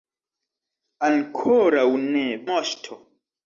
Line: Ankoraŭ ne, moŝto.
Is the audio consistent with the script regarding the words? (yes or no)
yes